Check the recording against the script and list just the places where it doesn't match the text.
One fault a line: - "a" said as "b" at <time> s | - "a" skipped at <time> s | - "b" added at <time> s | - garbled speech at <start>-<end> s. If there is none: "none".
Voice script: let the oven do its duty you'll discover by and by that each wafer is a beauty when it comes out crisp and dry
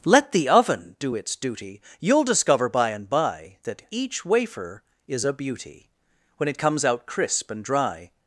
none